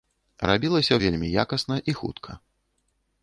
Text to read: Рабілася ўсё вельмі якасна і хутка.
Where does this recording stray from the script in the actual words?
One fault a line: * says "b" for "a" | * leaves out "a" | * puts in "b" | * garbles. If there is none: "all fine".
* leaves out "ўсё"